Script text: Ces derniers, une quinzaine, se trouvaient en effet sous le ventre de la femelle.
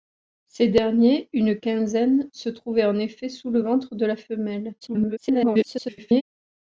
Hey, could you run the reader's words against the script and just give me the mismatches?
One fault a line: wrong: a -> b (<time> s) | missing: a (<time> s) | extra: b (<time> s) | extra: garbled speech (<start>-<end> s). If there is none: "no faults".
extra: garbled speech (4.8-6.2 s)